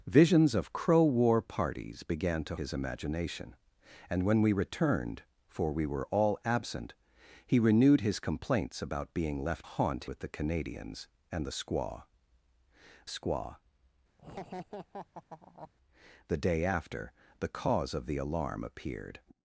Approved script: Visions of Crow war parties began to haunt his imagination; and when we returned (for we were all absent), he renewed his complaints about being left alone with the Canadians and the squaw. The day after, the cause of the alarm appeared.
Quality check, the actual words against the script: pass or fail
fail